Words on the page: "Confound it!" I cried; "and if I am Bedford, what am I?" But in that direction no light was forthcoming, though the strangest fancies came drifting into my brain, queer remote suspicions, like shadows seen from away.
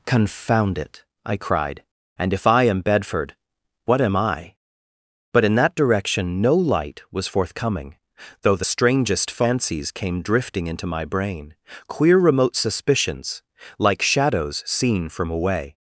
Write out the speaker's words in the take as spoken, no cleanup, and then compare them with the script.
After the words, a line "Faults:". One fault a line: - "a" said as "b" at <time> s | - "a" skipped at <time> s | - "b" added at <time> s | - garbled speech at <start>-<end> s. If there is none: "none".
"Confound it!" I cried; "and if I am Bedford, what am I?" But in that direction no light was forthcoming, though the strangest fancies came drifting into my brain, queer remote suspicions, like shadows seen from away.
Faults:
none